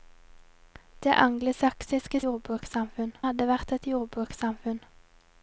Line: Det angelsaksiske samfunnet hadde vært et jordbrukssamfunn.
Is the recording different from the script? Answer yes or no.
yes